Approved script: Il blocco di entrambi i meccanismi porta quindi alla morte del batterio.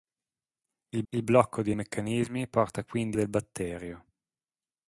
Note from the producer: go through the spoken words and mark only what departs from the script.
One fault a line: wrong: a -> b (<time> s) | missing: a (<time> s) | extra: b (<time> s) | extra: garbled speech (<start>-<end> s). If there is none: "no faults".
extra: il (1.1 s)
missing: entrambi (1.7 s)
missing: alla morte (3.2 s)